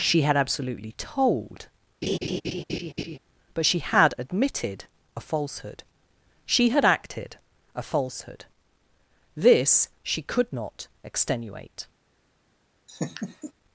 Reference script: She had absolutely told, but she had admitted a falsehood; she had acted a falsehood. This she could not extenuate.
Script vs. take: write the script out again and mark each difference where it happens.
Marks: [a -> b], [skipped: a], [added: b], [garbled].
She had absolutely told, but she had admitted a falsehood; she had acted a falsehood. This she could not extenuate.